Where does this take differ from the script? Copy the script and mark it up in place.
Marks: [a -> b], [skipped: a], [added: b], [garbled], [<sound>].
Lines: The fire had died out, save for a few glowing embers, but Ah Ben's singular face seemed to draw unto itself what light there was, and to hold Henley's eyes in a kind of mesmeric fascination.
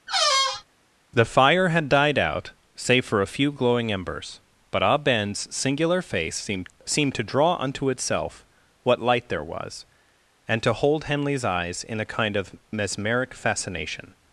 [squeak] The fire had died out, save for a few glowing embers, but Ah Ben's singular face seemed [added: seemed] to draw unto itself what light there was, and to hold Henley's eyes in a kind of mesmeric fascination.